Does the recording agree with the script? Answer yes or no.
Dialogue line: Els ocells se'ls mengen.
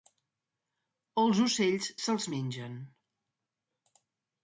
yes